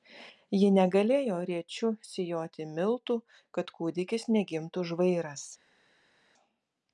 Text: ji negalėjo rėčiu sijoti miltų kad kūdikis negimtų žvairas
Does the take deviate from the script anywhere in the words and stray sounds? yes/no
no